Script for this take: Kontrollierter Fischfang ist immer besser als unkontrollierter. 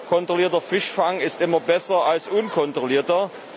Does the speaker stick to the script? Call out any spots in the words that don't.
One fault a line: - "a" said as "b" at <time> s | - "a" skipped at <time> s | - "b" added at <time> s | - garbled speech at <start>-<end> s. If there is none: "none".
none